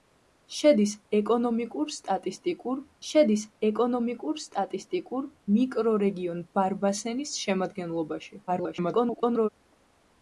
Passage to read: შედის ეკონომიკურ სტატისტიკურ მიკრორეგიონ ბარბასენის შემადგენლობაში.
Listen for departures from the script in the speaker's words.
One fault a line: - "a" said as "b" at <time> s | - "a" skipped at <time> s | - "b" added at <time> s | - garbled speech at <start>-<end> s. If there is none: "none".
- "შედის ეკონომიკურ სტატისტიკურ" added at 3.1 s
- garbled speech at 8.5-9.5 s